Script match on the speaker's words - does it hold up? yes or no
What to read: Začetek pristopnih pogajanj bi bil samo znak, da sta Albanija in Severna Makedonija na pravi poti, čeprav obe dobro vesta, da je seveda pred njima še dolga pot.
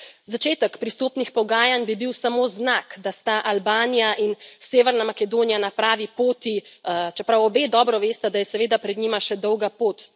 yes